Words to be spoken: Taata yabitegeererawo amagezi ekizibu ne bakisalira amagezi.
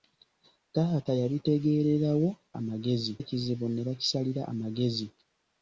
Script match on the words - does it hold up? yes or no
yes